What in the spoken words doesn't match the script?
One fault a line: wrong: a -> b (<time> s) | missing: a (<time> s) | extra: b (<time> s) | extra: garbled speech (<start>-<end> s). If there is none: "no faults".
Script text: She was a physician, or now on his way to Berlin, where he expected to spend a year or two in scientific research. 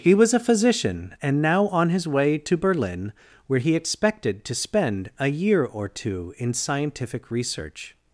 wrong: She -> He (0.0 s)
wrong: or -> and (1.2 s)